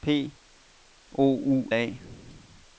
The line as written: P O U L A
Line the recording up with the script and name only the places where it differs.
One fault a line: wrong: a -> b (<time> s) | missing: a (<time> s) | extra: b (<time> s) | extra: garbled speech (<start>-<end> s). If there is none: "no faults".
missing: L (1.7 s)